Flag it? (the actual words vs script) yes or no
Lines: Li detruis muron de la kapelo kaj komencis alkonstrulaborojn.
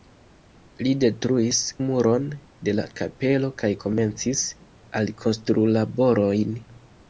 no